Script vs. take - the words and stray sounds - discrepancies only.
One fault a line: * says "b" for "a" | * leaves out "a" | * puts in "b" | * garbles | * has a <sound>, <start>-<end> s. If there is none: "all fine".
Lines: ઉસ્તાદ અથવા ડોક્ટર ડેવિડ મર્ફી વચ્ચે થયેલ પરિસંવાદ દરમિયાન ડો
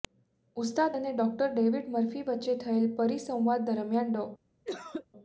* says "અને" for "અથવા"
* has a cough, 4.6-5.1 s